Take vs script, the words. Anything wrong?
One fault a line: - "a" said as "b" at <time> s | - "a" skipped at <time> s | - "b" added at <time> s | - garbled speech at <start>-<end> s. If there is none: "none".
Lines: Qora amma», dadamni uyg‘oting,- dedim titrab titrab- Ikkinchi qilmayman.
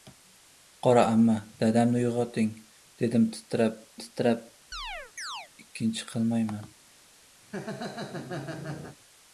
none